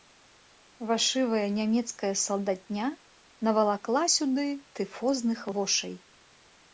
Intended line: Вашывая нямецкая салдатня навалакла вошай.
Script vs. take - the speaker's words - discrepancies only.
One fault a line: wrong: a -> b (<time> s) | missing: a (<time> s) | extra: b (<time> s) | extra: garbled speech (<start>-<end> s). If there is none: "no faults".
extra: сюды тыфозных (4.1 s)